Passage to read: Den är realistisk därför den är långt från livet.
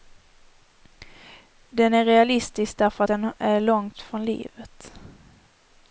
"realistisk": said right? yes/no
yes